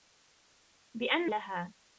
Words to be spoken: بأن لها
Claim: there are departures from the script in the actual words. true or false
false